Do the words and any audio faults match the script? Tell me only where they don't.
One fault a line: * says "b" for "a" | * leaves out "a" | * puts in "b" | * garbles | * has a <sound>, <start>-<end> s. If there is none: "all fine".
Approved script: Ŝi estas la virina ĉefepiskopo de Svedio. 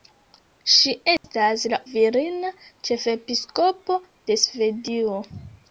* has a dropout, 1.2-1.2 s